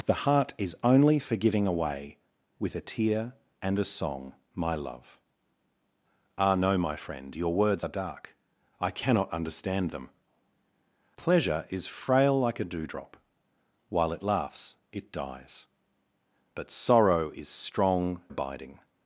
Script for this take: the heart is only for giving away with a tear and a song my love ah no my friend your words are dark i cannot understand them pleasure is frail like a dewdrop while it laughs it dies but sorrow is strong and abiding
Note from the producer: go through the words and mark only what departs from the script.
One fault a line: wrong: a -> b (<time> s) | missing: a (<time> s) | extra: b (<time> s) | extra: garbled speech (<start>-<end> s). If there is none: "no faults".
missing: and (18.2 s)